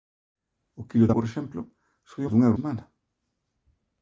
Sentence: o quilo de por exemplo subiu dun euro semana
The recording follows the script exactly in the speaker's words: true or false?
true